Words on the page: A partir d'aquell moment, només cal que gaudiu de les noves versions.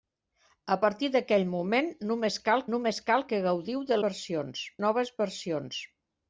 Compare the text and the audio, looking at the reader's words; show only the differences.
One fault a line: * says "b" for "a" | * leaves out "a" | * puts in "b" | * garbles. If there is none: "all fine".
* puts in "només cal"
* says "versions" for "les"